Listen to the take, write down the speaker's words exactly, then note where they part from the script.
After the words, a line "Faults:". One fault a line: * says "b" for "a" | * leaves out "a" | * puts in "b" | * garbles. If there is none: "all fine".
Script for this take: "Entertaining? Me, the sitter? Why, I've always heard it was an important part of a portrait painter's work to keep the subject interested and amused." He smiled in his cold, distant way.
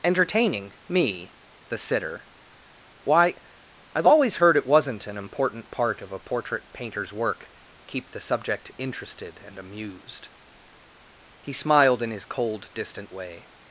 "Entertaining? Me, the sitter? Why, I've always heard it wasn't an important part of a portrait painter's work keep the subject interested and amused." He smiled in his cold, distant way.
Faults:
* says "wasn't" for "was"
* leaves out "to"